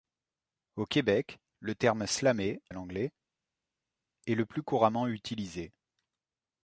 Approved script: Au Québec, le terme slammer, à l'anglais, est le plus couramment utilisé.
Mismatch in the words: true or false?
false